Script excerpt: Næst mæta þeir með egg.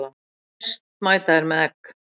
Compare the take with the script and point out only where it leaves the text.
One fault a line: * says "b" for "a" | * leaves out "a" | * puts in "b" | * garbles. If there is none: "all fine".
all fine